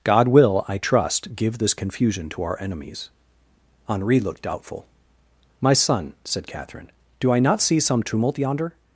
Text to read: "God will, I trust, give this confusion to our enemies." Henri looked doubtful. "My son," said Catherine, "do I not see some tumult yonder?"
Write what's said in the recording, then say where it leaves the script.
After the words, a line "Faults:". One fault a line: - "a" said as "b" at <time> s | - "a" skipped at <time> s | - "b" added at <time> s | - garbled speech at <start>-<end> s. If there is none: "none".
"God will, I trust, give this confusion to our enemies." Henri looked doubtful. "My son," said Catherine, "do I not see some tumult yonder?"
Faults:
none